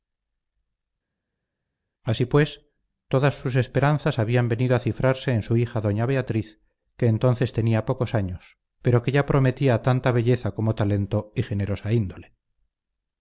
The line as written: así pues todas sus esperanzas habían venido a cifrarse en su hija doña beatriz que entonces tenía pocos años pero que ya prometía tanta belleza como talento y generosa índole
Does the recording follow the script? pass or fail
pass